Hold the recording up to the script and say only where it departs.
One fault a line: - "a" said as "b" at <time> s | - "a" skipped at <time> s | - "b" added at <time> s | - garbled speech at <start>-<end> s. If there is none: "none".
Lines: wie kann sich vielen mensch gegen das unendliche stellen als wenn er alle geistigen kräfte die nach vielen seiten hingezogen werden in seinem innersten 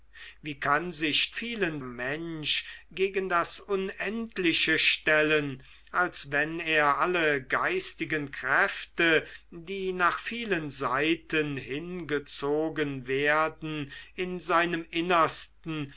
none